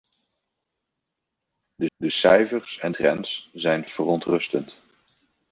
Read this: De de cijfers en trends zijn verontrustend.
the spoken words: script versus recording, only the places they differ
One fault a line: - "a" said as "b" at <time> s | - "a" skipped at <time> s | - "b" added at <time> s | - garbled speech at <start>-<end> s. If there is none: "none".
none